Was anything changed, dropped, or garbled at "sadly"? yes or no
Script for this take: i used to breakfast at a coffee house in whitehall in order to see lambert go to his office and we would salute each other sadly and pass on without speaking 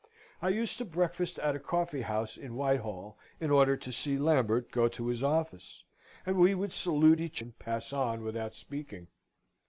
yes